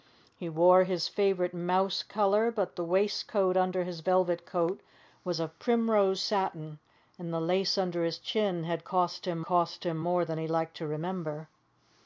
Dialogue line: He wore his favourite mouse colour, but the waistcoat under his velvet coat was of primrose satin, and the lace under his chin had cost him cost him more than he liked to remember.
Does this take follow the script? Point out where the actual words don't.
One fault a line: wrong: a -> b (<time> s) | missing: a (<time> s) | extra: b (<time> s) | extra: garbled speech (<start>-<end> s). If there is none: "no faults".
no faults